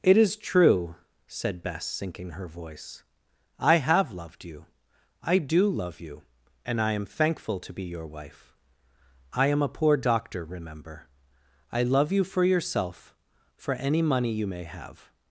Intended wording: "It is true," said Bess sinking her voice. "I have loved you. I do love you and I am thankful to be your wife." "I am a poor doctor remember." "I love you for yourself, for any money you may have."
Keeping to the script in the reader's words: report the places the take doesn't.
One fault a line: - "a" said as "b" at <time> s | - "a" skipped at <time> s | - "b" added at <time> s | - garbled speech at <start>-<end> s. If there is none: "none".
none